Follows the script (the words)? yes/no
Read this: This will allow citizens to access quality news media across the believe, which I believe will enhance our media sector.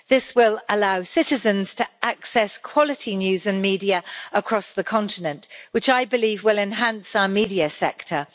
no